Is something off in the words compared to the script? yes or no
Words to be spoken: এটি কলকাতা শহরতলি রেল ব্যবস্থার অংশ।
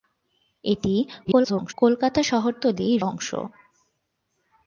yes